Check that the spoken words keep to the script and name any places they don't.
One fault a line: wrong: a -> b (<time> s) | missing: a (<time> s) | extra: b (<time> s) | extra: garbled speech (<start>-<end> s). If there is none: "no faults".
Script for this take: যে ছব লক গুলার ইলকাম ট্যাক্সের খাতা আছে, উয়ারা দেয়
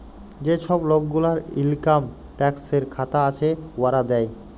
no faults